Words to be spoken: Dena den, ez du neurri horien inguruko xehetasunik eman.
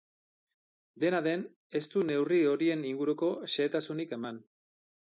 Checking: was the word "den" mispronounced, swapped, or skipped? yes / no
no